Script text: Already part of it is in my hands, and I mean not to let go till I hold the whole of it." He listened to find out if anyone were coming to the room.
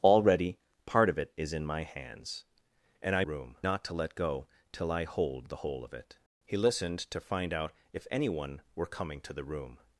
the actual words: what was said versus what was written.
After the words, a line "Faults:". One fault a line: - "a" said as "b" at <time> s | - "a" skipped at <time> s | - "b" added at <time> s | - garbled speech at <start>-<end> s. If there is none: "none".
Already part of it is in my hands, and I room not to let go till I hold the whole of it." He listened to find out if anyone were coming to the room.
Faults:
- "mean" said as "room" at 3.2 s